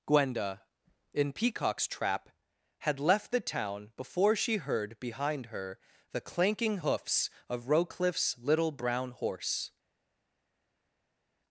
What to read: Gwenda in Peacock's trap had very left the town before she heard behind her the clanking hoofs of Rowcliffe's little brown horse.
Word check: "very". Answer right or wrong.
wrong